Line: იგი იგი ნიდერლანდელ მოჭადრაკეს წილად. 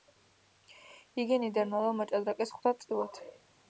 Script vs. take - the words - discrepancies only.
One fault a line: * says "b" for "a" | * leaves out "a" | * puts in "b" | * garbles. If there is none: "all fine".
* leaves out "იგი"
* puts in "ხვდა"